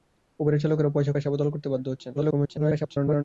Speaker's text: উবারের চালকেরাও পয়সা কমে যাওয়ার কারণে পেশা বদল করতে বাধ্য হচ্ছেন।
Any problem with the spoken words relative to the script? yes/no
yes